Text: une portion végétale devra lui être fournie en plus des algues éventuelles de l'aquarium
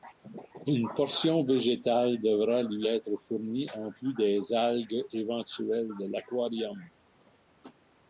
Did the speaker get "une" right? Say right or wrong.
right